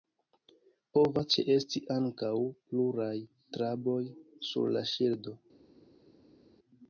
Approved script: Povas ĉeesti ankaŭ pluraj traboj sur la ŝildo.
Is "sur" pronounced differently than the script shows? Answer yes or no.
no